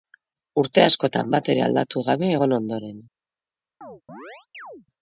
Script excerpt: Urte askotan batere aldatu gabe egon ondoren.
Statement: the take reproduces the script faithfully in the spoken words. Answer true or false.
true